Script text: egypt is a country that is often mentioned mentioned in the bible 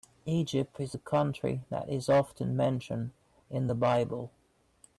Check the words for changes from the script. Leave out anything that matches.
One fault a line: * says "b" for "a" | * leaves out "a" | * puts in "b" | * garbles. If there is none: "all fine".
* leaves out "mentioned"